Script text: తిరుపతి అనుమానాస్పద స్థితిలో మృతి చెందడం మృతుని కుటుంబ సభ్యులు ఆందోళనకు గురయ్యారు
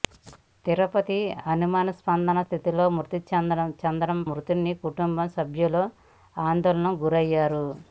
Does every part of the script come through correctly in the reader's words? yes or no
yes